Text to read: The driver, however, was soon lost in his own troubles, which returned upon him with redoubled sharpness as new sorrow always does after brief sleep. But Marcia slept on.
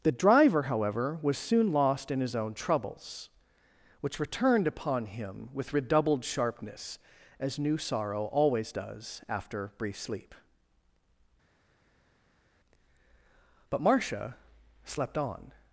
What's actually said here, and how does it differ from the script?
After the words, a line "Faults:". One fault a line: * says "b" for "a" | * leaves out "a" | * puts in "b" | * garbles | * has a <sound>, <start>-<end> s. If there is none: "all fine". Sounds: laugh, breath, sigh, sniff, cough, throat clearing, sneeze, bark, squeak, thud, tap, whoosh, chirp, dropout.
The driver, however, was soon lost in his own troubles, which returned upon him with redoubled sharpness as new sorrow always does after brief sleep. But Marcia slept on.
Faults:
all fine